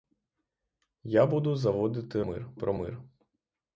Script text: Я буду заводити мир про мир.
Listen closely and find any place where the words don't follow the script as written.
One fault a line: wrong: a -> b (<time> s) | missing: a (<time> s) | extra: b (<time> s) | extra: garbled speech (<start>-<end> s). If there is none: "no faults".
no faults